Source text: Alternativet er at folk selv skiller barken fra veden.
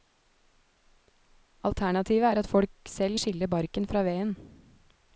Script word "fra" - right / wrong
right